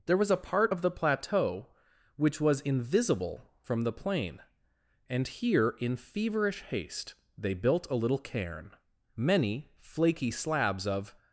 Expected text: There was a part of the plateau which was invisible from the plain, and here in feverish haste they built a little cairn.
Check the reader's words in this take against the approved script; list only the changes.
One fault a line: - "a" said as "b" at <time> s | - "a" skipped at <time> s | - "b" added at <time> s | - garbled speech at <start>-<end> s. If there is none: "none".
- "Many flaky slabs of" added at 9.2 s